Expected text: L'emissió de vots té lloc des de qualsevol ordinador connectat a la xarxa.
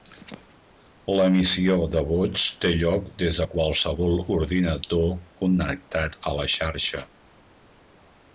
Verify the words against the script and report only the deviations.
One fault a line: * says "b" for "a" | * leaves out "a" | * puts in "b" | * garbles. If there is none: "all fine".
all fine